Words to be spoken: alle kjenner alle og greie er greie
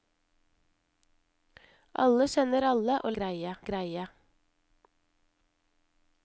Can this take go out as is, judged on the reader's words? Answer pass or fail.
pass